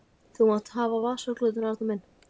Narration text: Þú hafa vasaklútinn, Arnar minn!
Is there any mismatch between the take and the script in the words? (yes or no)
yes